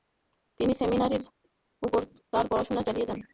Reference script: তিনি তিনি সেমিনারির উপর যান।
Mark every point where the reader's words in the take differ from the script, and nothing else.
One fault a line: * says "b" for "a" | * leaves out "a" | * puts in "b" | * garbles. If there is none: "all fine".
* leaves out "তিনি"
* puts in "তার পড়াশোনা চালিয়ে"